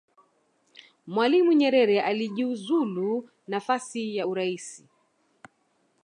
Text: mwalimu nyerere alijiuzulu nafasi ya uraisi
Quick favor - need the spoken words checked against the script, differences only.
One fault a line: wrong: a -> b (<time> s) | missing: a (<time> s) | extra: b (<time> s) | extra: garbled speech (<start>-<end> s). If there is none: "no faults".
no faults